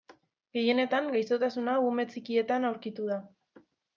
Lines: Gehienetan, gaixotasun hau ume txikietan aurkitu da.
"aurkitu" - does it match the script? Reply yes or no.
yes